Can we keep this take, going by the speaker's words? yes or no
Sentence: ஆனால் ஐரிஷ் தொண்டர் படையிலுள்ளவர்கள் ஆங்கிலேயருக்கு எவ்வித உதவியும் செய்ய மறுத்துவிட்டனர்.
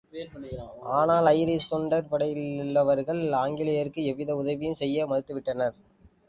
yes